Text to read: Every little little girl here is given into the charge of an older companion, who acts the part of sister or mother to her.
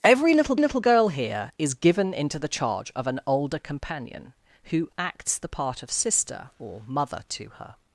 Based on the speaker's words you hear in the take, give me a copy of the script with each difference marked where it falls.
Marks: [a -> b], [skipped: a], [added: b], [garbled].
Every little little girl here is given into the charge of an older companion, who acts the part of sister or mother to her.